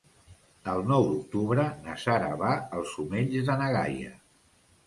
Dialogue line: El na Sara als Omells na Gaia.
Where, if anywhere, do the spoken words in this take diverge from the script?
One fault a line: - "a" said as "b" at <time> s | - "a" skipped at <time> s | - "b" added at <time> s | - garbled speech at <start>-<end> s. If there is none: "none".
- "nou d'octubre" added at 0.9 s
- "va" added at 2.4 s
- "de" added at 3.5 s